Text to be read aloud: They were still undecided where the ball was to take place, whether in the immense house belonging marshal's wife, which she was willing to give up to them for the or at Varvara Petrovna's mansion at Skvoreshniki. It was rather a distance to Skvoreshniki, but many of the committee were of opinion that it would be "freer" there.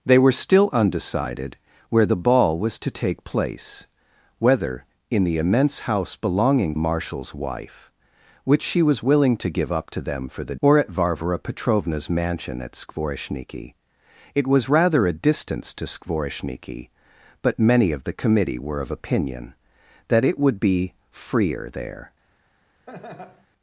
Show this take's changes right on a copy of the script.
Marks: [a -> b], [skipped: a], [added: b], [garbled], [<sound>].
They were still undecided where the ball was to take place, whether in the immense house belonging marshal's wife, which she was willing to give up to them for the or at Varvara Petrovna's mansion at Skvoreshniki. It was rather a distance to Skvoreshniki, but many of the committee were of opinion that it would be "freer" there. [laugh]